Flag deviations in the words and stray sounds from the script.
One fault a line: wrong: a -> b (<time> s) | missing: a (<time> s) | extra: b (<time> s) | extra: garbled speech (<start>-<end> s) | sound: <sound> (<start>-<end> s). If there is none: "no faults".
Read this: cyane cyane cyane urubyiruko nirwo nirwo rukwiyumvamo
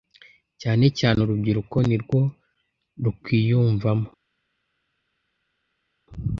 missing: cyane (1.2 s)
missing: nirwo (2.2 s)